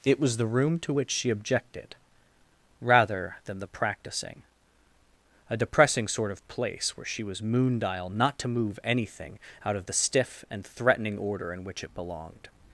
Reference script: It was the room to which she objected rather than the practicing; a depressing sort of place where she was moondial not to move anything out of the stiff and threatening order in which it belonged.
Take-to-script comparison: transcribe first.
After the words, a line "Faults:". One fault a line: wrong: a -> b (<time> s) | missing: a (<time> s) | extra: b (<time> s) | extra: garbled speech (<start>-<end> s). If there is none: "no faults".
It was the room to which she objected rather than the practicing; a depressing sort of place where she was moondial not to move anything out of the stiff and threatening order in which it belonged.
Faults:
no faults